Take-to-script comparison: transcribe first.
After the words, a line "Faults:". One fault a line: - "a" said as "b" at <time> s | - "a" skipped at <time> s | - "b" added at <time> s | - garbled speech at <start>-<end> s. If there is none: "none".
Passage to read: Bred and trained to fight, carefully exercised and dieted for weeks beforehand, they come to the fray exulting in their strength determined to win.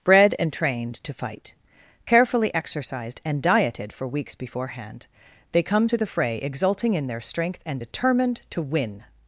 Bred and trained to fight, carefully exercised and dieted for weeks beforehand, they come to the fray exulting in their strength and determined to win.
Faults:
- "and" added at 7.6 s